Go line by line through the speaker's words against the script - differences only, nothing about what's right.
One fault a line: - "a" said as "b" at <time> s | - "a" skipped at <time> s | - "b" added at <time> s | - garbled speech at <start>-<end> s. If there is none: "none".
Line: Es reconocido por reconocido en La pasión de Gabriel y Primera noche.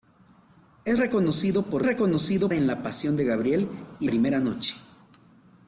none